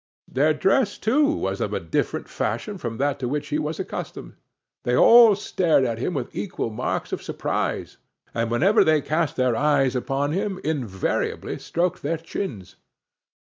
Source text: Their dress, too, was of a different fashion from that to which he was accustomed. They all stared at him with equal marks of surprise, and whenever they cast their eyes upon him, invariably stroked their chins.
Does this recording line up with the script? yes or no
yes